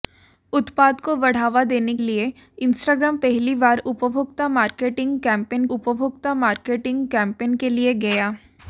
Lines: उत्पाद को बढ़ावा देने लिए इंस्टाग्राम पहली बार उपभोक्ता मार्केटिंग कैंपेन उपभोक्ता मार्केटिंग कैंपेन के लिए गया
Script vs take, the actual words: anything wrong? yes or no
no